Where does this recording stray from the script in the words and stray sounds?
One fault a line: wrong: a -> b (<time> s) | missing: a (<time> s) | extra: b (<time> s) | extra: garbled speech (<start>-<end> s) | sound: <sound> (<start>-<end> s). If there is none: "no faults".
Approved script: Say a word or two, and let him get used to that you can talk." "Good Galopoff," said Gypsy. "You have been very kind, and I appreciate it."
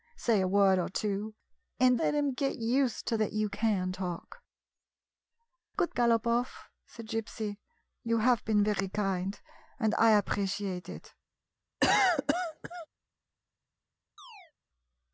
sound: cough (11.8-12.9 s)
sound: chirp (14.2-14.5 s)